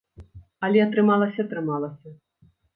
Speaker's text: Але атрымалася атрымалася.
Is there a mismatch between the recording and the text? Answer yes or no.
no